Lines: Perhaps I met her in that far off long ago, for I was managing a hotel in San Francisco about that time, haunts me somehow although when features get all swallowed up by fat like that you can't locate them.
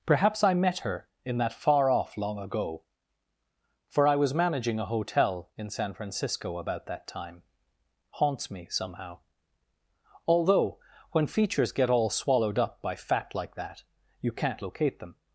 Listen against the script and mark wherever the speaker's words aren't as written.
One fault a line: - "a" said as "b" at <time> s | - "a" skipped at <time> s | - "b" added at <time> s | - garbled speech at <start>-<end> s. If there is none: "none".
none